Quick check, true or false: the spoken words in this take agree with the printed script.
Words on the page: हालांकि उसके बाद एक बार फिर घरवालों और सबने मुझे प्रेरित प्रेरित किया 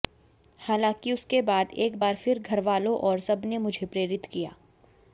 false